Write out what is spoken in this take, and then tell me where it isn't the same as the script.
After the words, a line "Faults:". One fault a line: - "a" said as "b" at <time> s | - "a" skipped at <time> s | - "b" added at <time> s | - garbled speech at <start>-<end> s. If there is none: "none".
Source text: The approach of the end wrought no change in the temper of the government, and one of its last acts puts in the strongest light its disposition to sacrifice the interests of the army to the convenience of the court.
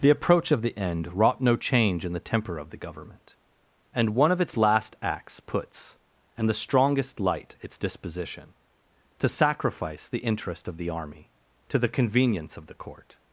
The approach of the end wrought no change in the temper of the government, and one of its last acts puts and the strongest light its disposition to sacrifice the interest of the army to the convenience of the court.
Faults:
- "in" said as "and" at 6.3 s
- "interests" said as "interest" at 10.2 s